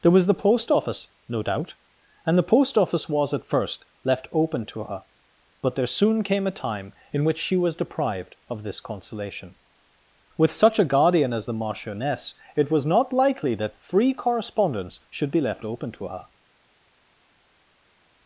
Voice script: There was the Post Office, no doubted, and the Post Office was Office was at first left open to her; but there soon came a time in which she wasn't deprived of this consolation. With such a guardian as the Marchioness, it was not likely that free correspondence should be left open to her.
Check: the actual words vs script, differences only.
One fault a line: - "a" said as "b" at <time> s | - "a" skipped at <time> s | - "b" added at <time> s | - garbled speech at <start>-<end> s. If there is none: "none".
- "doubted" said as "doubt" at 1.4 s
- "Office was" skipped at 3.3 s
- "wasn't" said as "was" at 7.5 s